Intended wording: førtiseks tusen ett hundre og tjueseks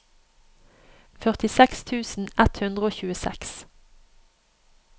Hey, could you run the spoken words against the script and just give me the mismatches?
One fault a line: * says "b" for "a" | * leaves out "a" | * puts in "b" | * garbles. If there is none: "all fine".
all fine